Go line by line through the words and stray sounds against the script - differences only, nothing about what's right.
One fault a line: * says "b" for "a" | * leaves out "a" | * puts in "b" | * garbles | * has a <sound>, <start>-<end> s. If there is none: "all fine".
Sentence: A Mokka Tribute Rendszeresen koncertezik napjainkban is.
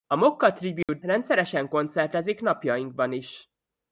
* has a dropout, 0.8-0.9 s